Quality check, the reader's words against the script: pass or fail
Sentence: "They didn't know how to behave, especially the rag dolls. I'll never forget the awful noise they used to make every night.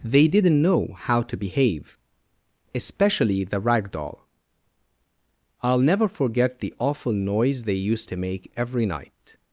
fail